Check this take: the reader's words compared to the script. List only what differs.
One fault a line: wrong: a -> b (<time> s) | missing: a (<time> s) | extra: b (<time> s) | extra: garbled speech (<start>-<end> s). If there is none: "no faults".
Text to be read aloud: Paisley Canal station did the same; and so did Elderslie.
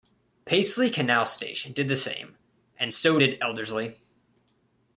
no faults